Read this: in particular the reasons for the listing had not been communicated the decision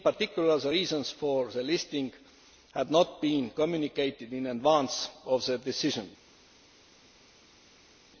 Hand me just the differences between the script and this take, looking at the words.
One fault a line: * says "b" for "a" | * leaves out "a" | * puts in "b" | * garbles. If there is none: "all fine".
* puts in "in advance of"